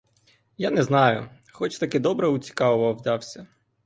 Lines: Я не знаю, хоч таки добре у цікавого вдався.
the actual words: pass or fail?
pass